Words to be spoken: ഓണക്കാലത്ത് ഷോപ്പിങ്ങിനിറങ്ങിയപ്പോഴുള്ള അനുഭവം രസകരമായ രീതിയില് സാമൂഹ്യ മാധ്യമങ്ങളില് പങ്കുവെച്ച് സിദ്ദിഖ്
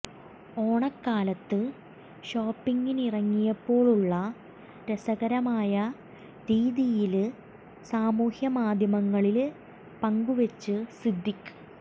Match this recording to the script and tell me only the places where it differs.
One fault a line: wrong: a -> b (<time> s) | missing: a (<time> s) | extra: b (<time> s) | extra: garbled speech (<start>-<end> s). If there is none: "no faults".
missing: അനുഭവം (4.1 s)